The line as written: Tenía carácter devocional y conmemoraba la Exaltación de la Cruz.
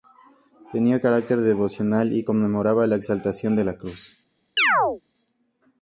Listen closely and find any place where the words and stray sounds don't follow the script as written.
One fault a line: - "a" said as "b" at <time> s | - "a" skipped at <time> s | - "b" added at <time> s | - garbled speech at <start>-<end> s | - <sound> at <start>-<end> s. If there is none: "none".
- chirp at 4.6-5.0 s